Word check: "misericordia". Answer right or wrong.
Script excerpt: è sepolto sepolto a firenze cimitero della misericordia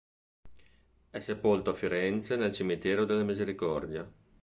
right